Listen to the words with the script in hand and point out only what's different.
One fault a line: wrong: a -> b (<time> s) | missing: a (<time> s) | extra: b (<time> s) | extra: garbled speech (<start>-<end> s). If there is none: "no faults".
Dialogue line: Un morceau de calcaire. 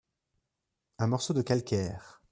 no faults